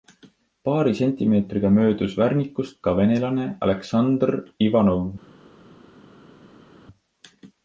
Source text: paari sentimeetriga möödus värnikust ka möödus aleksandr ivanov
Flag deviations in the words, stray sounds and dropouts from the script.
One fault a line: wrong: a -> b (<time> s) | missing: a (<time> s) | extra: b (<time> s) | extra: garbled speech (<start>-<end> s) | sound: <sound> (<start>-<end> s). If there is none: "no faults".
wrong: möödus -> venelane (3.0 s)